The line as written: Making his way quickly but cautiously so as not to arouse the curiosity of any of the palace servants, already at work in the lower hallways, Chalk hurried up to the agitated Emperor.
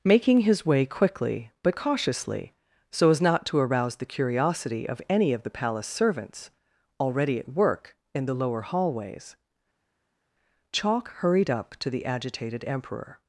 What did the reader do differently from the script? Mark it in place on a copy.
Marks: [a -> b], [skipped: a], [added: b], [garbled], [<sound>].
Making his way quickly but cautiously so as not to arouse the curiosity of any of the palace servants, already at work in the lower hallways, Chalk hurried up to the agitated Emperor.